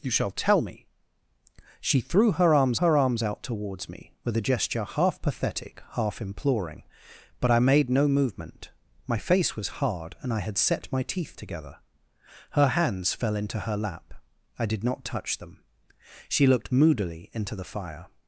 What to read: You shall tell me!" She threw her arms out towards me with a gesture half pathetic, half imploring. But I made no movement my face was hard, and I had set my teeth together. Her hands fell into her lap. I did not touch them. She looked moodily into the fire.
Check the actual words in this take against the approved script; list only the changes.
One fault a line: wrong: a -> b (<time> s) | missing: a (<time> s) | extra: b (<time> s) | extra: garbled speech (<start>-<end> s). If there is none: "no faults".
extra: her arms (2.8 s)